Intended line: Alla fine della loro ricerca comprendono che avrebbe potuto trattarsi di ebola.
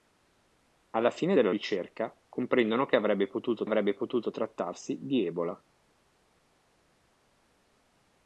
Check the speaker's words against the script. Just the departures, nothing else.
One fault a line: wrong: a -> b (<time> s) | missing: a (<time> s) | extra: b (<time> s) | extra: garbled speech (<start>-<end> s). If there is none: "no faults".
missing: loro (1.5 s)
extra: avrebbe potuto (3.6 s)